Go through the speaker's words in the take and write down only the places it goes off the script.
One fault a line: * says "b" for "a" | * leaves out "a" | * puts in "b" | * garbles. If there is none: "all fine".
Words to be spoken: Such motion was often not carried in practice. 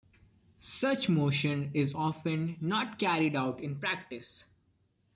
* says "is" for "was"
* puts in "out"